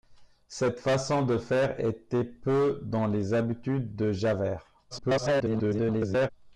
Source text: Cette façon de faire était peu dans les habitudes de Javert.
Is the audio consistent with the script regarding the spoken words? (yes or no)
no